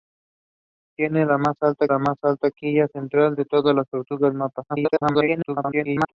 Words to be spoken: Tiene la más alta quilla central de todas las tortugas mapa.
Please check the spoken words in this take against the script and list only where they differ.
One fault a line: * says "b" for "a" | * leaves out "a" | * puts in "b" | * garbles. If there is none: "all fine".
* puts in "la más alta"
* garbles